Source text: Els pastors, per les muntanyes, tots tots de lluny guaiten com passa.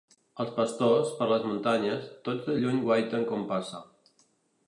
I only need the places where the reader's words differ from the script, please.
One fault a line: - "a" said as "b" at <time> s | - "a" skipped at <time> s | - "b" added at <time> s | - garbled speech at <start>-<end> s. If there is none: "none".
- "tots" skipped at 2.5 s